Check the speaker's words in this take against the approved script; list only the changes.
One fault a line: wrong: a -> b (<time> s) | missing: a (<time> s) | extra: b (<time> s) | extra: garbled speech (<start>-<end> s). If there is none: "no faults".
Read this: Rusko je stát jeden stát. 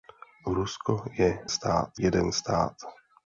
no faults